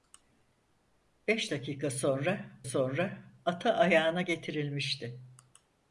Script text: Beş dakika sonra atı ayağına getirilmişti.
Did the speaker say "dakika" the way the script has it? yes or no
yes